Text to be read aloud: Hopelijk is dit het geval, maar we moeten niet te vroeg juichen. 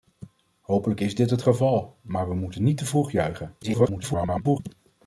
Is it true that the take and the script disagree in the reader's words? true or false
true